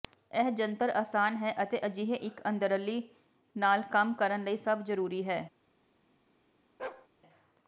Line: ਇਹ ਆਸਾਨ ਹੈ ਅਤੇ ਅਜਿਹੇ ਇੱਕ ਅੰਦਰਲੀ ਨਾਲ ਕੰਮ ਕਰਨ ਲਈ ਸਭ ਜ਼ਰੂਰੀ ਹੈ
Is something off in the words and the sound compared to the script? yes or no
yes